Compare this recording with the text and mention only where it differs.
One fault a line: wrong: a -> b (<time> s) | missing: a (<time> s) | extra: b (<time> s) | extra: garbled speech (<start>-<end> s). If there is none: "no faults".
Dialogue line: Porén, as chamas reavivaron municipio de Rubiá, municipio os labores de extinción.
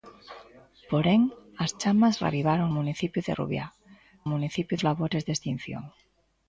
no faults